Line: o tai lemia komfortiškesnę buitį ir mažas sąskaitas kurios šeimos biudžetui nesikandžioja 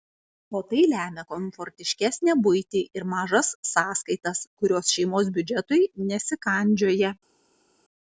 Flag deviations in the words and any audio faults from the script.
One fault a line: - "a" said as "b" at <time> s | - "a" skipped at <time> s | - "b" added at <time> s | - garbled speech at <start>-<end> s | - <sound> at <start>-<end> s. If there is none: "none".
none